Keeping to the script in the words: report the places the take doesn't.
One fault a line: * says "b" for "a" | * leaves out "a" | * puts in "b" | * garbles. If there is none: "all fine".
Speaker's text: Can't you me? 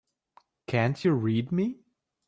* puts in "read"